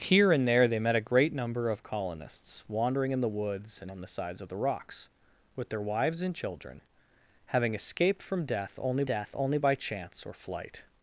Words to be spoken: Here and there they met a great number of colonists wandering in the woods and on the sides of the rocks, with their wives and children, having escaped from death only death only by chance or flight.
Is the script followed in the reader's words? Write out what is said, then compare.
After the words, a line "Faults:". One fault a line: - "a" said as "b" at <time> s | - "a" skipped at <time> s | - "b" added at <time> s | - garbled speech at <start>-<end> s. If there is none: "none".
Here and there they met a great number of colonists wandering in the woods and on the sides of the rocks, with their wives and children, having escaped from death only death only by chance or flight.
Faults:
none